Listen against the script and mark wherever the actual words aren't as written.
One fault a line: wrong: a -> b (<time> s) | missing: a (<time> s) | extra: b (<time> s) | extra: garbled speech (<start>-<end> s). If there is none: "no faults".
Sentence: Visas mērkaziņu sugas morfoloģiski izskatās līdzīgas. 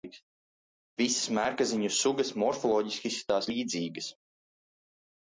no faults